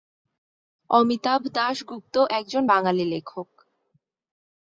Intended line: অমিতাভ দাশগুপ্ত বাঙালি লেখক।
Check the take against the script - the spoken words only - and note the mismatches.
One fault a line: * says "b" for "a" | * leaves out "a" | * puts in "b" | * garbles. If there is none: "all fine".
* puts in "একজন"